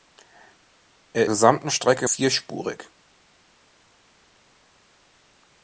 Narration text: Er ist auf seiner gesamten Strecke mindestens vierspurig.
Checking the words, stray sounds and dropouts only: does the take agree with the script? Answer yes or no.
no